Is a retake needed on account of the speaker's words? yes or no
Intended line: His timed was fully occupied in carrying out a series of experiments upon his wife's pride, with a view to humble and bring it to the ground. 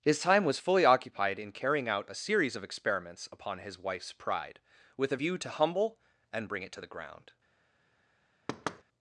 yes